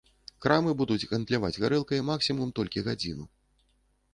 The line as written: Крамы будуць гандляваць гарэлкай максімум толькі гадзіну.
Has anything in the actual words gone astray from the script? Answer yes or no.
no